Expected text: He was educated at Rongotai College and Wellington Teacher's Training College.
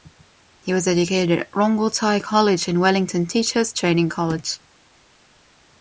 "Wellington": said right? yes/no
yes